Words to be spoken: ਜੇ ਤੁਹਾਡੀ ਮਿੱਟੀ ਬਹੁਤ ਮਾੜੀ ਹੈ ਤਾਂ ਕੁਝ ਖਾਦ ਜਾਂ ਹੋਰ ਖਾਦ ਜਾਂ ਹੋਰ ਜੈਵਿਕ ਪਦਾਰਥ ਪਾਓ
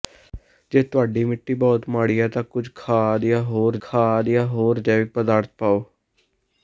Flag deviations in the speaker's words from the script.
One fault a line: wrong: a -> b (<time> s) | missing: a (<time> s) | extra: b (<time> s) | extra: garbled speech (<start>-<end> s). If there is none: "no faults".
no faults